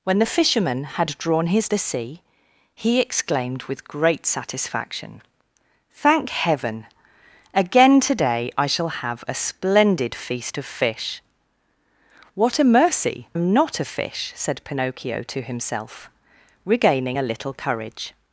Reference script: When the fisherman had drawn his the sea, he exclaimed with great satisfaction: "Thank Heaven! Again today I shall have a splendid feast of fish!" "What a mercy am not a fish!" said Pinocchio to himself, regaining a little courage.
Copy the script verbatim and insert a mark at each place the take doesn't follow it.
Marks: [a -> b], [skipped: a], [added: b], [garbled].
When the fisherman had drawn his the sea, he exclaimed with great satisfaction: "Thank Heaven! Again today I shall have a splendid feast of fish!" "What a mercy am not a fish!" said Pinocchio to himself, regaining a little courage.